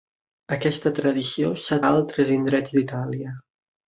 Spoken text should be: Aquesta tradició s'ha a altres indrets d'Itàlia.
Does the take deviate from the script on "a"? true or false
false